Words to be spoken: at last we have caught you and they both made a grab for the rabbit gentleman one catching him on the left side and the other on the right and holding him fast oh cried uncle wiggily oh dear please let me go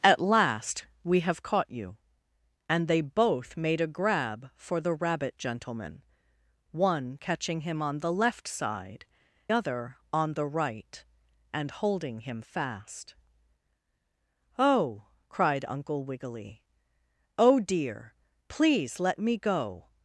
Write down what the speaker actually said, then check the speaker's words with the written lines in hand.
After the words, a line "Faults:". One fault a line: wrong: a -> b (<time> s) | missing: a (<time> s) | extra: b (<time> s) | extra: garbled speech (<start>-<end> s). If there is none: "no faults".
at last we have caught you and they both made a grab for the rabbit gentleman one catching him on the left side other on the right and holding him fast oh cried uncle wiggily oh dear please let me go
Faults:
missing: and the (9.1 s)